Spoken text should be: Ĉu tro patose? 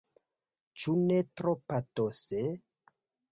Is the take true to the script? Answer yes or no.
no